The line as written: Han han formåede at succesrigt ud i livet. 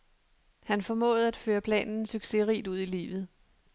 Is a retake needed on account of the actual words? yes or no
yes